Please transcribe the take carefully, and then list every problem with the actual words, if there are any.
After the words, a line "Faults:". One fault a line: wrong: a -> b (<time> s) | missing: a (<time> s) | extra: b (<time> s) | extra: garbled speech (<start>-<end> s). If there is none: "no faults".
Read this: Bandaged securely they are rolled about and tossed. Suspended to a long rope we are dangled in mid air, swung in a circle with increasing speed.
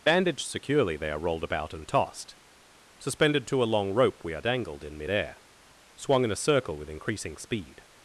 Bandaged securely they are rolled about and tossed. Suspended to a long rope we are dangled in mid air, swung in a circle with increasing speed.
Faults:
no faults